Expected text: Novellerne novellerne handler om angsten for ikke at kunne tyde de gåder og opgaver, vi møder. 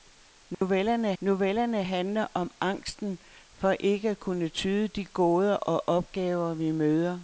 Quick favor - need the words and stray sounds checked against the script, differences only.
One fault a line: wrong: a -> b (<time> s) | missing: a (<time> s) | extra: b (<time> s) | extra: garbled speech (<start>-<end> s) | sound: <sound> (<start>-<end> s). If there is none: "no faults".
sound: dropout (0.5-0.6 s)